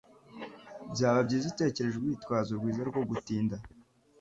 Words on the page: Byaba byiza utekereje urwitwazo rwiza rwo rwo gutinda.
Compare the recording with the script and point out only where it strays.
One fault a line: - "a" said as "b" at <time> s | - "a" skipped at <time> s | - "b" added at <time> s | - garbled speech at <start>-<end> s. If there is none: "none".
- "rwo" skipped at 3.0 s